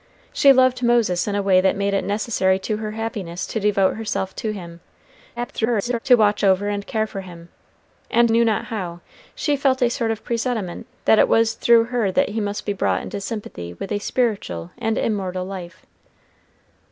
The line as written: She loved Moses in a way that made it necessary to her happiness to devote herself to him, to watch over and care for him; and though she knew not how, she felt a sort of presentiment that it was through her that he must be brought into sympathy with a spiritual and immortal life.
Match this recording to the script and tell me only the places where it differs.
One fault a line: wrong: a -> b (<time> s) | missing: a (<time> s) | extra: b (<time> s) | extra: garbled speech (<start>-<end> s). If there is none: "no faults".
extra: garbled speech (5.4-6.0 s)
missing: though she (8.3 s)